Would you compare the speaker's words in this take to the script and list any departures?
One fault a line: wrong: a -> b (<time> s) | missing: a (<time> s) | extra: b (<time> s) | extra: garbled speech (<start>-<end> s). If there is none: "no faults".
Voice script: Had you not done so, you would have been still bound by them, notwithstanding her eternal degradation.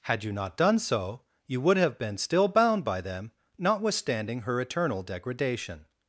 no faults